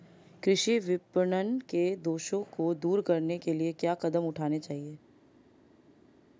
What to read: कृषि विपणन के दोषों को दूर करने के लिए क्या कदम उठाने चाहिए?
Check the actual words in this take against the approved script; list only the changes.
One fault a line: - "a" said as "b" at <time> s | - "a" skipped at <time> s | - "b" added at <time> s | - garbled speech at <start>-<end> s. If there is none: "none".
none